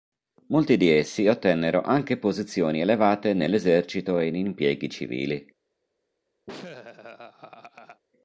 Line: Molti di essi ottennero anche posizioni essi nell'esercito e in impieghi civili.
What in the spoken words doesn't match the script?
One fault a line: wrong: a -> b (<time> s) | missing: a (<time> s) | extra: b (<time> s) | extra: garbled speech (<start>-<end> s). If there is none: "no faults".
wrong: essi -> elevate (2.8 s)